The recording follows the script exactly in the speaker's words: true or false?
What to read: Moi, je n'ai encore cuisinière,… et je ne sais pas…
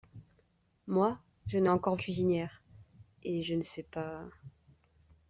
true